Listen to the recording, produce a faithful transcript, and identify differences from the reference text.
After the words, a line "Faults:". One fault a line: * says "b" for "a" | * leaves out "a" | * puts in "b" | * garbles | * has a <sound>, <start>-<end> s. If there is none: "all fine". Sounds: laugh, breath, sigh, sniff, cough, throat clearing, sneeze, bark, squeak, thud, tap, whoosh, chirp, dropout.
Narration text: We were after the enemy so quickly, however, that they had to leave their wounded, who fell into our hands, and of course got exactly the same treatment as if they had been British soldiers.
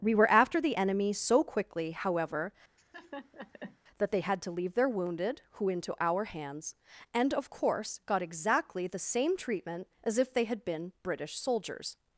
We were after the enemy so quickly, however, that they had to leave their wounded, who into our hands, and of course got exactly the same treatment as if they had been British soldiers.
Faults:
* has a laugh, 2.8-3.8 s
* leaves out "fell"